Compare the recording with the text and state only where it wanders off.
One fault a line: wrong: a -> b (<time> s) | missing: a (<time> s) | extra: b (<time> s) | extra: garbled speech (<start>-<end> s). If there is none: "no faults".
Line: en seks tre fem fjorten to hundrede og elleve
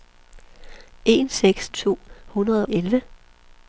missing: tre fem fjorten (1.7 s)
missing: og (2.7 s)